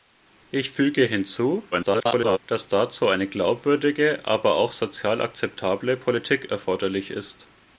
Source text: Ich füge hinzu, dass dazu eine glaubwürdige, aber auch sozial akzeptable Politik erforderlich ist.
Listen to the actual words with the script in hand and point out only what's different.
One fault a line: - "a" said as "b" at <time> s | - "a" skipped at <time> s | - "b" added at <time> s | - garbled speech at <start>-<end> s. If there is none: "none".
- garbled speech at 1.7-2.4 s